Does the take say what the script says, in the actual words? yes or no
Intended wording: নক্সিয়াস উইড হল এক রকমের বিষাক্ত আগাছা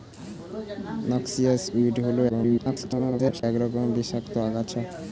no